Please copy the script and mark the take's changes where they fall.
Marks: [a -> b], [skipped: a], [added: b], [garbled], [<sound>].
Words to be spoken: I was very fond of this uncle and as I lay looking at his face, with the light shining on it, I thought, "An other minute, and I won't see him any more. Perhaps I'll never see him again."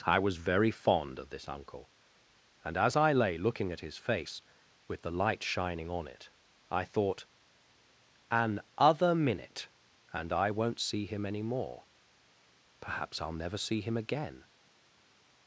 I was very fond of this uncle and as I lay looking at his face, with the light shining on it, I thought, "An other minute, and I won't see him any more. Perhaps I'll never see him again."